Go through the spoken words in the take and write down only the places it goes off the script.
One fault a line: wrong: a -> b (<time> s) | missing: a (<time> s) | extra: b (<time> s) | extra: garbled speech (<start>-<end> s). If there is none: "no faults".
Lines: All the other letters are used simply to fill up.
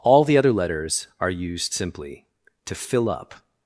no faults